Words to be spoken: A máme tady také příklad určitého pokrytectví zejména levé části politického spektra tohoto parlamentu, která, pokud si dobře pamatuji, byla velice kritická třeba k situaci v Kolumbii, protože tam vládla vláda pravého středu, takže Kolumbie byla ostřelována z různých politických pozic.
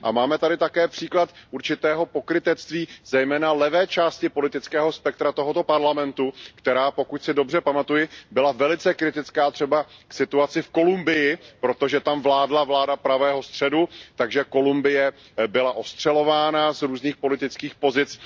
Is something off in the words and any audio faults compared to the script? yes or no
no